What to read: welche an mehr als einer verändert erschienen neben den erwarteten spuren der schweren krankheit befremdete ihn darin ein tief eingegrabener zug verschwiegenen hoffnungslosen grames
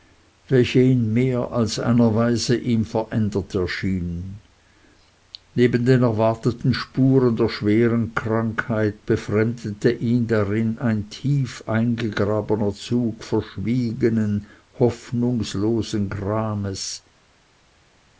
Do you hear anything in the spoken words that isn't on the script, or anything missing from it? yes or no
yes